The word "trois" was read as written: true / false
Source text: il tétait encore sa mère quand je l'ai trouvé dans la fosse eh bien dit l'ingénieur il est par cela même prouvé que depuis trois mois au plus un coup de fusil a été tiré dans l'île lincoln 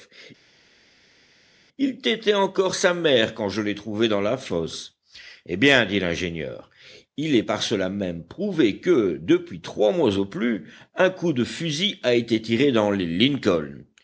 true